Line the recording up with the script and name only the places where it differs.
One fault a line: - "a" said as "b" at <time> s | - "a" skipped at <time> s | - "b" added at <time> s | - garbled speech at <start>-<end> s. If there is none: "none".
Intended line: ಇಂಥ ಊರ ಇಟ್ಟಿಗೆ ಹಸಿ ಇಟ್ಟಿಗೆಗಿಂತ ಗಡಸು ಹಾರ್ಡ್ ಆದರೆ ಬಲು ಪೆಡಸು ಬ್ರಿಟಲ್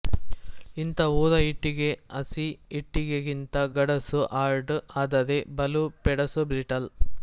none